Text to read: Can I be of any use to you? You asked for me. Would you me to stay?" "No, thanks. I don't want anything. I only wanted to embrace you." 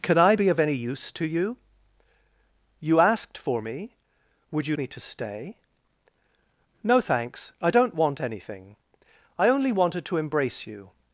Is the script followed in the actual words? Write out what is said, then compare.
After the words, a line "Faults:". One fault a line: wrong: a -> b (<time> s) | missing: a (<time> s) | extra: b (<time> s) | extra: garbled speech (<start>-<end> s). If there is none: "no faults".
Can I be of any use to you? You asked for me. Would you me to stay?" "No, thanks. I don't want anything. I only wanted to embrace you."
Faults:
no faults